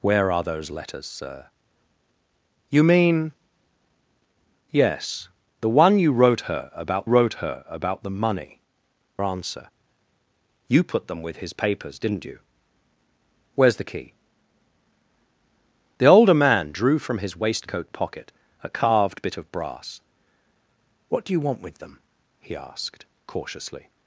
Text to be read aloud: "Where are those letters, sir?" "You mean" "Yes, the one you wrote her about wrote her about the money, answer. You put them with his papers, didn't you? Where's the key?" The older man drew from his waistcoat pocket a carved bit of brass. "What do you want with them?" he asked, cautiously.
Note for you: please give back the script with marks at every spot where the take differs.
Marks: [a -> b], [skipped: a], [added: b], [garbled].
"Where are those letters, sir?" "You mean" "Yes, the one you wrote her about wrote her about the money, answer. You put them with his papers, didn't you? Where's the key?" The older man drew from his waistcoat pocket a carved bit of brass. "What do you want with them?" he asked, cautiously.